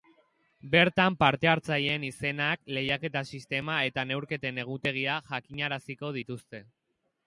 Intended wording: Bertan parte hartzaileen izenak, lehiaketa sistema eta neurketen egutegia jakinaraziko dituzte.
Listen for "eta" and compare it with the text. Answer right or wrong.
right